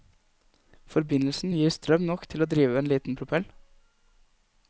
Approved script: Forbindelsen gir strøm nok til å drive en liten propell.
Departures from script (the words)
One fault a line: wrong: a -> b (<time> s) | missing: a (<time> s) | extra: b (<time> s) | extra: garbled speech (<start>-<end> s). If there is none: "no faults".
no faults